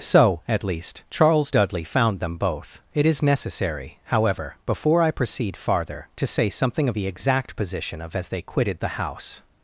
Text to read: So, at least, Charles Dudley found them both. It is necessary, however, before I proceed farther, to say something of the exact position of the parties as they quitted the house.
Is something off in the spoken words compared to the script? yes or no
yes